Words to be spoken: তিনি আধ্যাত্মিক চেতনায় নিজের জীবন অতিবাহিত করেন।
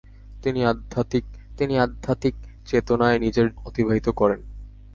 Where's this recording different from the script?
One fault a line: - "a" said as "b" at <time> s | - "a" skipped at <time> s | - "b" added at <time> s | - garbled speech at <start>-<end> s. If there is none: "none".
- "তিনি আধ্যাত্মিক" added at 1.6 s
- "জীবন" skipped at 3.5 s